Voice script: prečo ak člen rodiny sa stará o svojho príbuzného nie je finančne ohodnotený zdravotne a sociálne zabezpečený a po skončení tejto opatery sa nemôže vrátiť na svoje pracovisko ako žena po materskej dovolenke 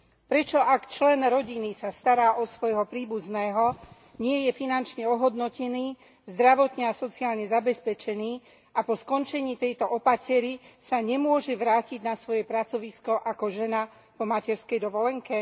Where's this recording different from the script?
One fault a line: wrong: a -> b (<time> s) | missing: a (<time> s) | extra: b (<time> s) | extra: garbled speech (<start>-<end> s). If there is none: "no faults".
no faults